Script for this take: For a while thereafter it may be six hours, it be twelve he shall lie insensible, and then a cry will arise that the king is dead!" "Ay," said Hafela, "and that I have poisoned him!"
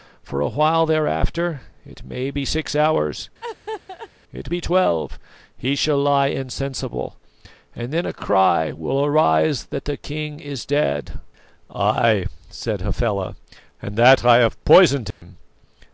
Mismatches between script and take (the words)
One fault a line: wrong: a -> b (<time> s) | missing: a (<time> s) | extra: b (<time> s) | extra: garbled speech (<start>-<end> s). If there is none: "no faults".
no faults